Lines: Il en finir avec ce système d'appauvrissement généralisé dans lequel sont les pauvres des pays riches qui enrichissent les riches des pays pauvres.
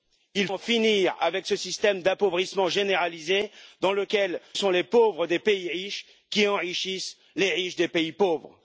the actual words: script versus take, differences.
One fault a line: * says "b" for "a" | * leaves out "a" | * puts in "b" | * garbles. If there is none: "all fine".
all fine